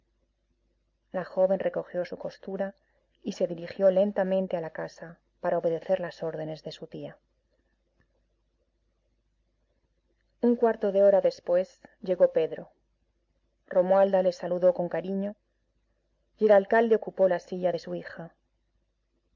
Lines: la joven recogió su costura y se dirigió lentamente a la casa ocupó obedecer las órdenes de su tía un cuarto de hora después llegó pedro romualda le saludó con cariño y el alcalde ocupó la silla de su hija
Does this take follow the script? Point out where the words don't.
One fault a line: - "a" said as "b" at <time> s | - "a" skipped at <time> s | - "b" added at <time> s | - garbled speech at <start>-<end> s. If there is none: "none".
- "ocupó" said as "para" at 5.4 s